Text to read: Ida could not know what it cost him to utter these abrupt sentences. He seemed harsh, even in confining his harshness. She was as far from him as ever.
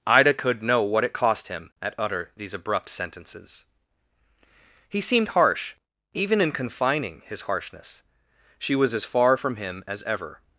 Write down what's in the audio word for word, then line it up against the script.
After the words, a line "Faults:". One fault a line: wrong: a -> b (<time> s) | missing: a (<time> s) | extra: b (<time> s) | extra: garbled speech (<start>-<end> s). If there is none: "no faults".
Ida could know what it cost him at utter these abrupt sentences. He seemed harsh, even in confining his harshness. She was as far from him as ever.
Faults:
missing: not (0.6 s)
wrong: to -> at (1.8 s)